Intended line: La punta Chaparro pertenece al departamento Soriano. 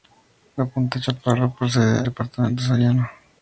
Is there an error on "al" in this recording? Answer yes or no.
yes